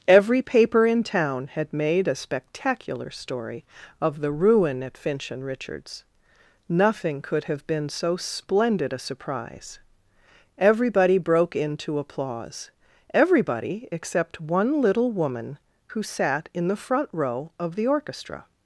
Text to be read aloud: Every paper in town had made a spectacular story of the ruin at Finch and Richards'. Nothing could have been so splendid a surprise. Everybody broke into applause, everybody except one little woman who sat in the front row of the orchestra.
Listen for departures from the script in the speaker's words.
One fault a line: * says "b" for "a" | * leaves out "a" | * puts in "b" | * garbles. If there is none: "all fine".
all fine